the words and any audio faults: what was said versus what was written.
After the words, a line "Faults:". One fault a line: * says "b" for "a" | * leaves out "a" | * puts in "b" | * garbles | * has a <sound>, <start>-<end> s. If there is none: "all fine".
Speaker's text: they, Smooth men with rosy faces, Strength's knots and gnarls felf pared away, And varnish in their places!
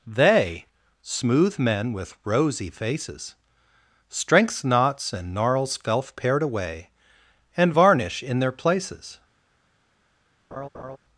they, Smooth men with rosy faces, Strength's knots and gnarls felf pared away, And varnish in their places!
Faults:
* has a laugh, 10.5-11.0 s